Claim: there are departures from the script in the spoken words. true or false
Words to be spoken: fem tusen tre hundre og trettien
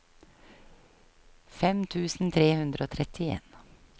false